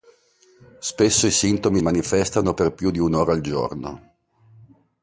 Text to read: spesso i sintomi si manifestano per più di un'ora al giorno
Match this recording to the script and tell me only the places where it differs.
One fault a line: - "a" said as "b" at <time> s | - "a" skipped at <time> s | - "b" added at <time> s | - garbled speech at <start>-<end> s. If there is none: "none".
- "si" skipped at 1.8 s